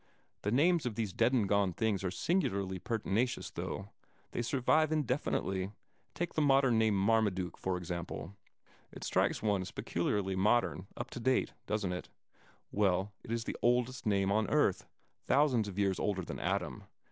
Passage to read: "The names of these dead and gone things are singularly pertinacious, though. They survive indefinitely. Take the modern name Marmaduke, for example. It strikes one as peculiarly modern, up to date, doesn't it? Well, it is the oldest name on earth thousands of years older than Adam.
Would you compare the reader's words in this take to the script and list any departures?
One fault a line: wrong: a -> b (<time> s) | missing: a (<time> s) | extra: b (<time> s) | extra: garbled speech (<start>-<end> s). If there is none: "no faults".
no faults